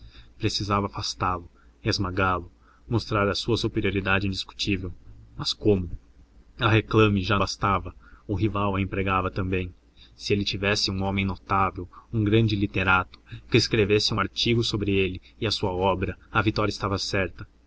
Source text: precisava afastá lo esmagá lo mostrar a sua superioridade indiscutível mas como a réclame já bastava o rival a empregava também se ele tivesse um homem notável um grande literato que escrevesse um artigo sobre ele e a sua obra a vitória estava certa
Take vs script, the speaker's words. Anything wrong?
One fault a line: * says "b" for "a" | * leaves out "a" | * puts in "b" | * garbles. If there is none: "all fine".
all fine